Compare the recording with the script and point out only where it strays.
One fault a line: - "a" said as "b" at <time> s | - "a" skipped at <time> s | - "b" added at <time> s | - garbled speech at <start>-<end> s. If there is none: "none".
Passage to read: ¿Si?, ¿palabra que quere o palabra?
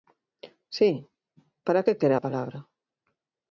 - "palabra" said as "para" at 1.6 s
- "o" said as "a" at 2.1 s